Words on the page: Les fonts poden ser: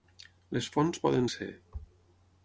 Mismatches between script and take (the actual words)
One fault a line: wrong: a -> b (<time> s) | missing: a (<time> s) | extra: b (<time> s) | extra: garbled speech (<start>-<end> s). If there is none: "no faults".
no faults